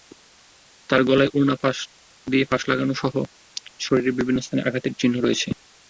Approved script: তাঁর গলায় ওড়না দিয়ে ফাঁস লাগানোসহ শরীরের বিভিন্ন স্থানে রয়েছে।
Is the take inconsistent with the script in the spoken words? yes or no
yes